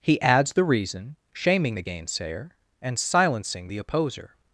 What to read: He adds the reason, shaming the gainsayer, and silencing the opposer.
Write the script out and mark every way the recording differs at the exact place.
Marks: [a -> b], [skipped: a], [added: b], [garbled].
He adds the reason, shaming the gainsayer, and silencing the opposer.